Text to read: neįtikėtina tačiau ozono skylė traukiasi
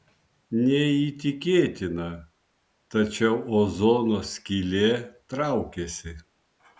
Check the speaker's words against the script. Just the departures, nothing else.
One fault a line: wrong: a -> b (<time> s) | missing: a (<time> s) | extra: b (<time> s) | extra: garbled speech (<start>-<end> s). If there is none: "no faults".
no faults